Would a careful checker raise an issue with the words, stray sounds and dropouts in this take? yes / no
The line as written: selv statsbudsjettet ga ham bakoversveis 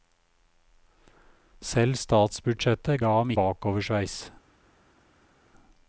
no